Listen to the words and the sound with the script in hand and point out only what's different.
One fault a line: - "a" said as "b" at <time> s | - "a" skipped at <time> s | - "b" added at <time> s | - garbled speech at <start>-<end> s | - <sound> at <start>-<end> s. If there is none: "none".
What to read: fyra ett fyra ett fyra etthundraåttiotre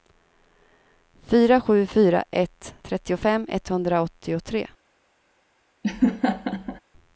- "ett" said as "sju" at 1.6 s
- "fyra" said as "trettiofem" at 2.8 s
- laugh at 5.8-6.8 s